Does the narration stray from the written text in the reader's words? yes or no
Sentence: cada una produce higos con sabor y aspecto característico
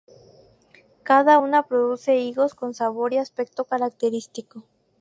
no